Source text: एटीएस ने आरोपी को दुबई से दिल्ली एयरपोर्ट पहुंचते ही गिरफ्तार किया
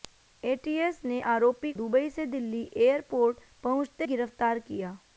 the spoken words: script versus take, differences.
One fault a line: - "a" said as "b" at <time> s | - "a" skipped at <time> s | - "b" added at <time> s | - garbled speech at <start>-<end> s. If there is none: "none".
- "को" skipped at 1.7 s
- "ही" skipped at 4.1 s